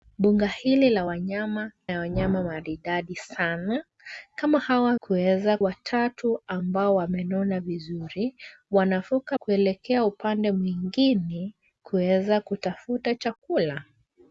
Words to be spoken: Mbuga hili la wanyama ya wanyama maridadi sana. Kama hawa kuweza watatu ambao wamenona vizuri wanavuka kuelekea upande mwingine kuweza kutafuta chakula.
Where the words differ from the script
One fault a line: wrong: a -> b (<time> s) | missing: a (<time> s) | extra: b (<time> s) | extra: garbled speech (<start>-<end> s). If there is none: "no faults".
no faults